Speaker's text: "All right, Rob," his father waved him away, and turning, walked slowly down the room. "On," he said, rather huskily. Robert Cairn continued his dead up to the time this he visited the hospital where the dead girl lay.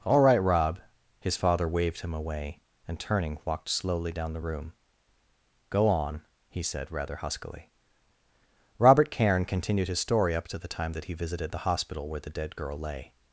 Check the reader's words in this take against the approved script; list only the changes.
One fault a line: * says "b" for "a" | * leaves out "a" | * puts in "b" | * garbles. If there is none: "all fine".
* puts in "Go"
* says "story" for "dead"
* says "that" for "this"